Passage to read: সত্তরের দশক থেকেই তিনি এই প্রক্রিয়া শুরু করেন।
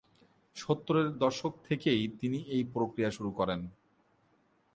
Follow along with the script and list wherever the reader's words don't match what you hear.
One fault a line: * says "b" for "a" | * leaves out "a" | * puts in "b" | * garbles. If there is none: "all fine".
all fine